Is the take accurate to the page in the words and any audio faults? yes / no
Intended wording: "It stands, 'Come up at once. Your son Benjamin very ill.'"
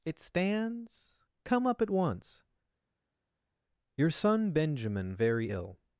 yes